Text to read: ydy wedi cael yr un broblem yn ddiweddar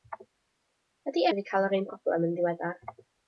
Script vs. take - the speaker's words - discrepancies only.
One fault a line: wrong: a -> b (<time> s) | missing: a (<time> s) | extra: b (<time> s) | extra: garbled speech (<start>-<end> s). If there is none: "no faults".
no faults